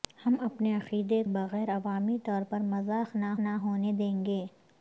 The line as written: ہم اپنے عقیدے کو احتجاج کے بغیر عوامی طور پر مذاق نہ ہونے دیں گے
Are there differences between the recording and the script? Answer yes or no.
yes